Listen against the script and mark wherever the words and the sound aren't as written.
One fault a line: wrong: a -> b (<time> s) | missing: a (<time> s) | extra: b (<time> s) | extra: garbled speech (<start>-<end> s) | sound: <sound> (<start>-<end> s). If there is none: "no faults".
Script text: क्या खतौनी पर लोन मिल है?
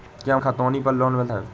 no faults